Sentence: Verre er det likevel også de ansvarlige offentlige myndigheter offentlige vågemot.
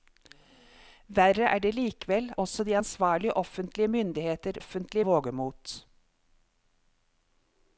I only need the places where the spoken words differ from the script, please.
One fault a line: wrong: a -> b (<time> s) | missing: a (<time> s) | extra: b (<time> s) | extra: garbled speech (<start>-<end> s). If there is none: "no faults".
no faults